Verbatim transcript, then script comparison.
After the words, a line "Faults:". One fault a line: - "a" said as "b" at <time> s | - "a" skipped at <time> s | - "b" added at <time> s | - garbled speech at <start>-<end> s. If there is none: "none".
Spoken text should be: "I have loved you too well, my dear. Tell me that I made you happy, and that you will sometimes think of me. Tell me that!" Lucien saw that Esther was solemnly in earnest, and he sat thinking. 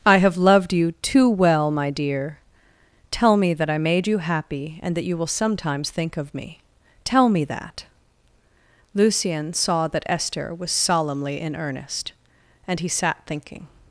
"I have loved you too well, my dear. Tell me that I made you happy, and that you will sometimes think of me. Tell me that!" Lucien saw that Esther was solemnly in earnest, and he sat thinking.
Faults:
none